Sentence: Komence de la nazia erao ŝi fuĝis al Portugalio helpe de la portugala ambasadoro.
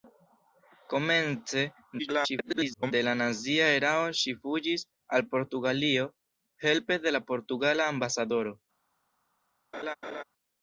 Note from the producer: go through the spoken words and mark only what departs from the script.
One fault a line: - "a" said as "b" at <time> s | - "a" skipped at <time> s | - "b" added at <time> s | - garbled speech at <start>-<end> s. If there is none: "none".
- garbled speech at 2.0-2.9 s